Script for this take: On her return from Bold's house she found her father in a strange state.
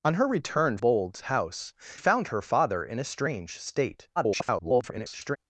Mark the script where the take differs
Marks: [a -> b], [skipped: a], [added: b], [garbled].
On her return [skipped: from] Bold's house [skipped: she] found her father in a strange state. [garbled]